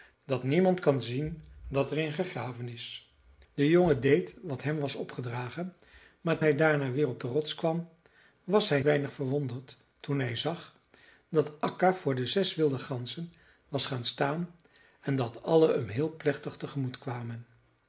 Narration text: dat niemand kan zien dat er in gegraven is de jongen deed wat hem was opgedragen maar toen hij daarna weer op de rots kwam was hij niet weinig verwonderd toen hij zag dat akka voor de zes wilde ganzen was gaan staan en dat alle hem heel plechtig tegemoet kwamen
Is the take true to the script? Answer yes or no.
no